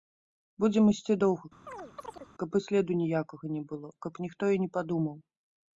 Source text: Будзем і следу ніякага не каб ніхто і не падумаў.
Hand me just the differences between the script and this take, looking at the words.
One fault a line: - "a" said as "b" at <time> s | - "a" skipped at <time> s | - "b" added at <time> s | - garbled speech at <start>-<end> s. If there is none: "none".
- "ісці доўга каб" added at 0.9 s
- "было" added at 3.7 s